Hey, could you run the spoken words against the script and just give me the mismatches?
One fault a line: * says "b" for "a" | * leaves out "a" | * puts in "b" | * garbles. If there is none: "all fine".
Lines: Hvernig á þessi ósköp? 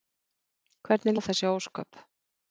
all fine